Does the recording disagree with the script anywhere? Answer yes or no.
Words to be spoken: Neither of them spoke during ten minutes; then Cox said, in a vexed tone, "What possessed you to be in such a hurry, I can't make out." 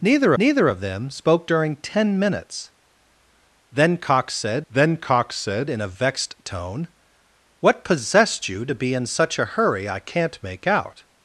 yes